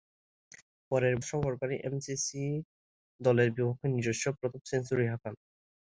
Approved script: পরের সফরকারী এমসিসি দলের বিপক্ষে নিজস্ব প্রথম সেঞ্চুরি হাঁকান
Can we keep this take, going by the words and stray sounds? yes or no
yes